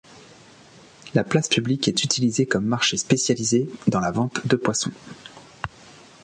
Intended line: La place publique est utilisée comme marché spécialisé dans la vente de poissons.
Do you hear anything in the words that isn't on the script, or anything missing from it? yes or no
no